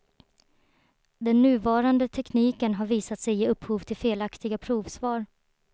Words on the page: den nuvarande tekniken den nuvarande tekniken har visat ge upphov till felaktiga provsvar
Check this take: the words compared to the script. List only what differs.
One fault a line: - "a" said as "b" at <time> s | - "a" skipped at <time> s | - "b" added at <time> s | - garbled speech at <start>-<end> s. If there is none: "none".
- "den nuvarande tekniken" skipped at 2.7 s
- "sig" added at 3.2 s